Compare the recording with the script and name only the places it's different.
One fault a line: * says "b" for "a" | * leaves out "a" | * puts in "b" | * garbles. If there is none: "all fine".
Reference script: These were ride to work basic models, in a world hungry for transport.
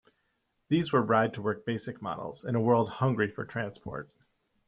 all fine